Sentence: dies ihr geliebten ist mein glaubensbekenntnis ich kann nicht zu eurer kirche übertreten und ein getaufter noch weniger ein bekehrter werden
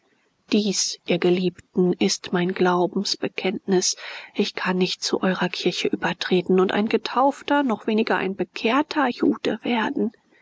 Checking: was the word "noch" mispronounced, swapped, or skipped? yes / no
no